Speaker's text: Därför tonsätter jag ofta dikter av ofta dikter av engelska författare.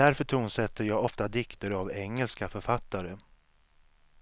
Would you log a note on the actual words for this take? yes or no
yes